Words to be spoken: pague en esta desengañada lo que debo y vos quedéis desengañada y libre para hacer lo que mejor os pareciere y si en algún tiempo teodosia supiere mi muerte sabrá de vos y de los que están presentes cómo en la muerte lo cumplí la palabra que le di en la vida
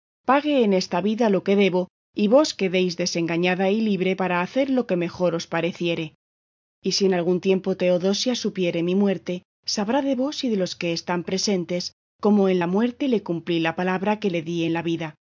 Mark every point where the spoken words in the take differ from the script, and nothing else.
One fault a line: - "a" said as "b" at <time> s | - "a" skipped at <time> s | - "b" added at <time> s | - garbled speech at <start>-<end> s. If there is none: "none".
- "desengañada" said as "vida" at 1.0 s
- "lo" said as "le" at 13.1 s